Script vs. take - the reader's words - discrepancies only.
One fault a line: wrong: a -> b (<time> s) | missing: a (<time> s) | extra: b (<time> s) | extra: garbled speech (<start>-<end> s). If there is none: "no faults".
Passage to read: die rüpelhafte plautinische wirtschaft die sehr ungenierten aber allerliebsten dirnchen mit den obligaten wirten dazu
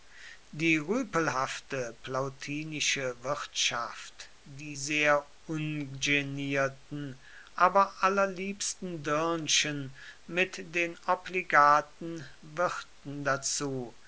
no faults